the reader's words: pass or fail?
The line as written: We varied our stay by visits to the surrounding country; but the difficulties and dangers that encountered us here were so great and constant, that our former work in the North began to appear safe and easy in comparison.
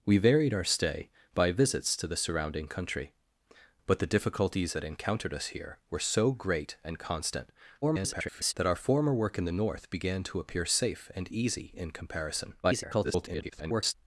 fail